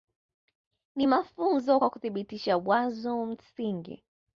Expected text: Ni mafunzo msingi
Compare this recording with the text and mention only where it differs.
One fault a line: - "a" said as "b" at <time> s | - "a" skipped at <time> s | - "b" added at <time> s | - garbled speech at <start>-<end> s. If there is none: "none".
- "kwa kuthibitisha wazo" added at 1.8 s